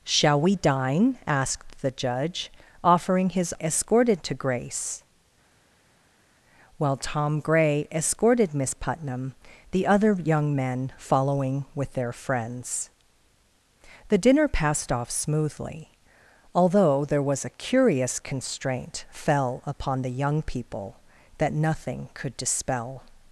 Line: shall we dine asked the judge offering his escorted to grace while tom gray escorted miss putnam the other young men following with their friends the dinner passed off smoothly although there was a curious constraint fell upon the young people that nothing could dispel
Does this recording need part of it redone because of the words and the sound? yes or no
no